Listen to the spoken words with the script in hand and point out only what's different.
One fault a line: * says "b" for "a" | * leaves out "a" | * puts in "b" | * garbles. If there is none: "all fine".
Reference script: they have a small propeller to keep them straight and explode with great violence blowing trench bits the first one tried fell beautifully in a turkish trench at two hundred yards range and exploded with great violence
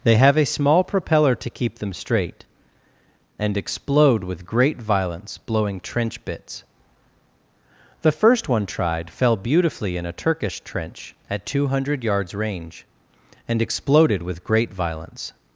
all fine